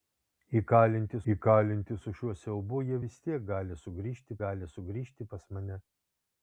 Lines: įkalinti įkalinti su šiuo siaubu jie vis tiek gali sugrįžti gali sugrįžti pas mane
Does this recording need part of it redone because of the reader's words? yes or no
no